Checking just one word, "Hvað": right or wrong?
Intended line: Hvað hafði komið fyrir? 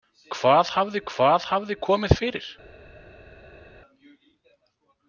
right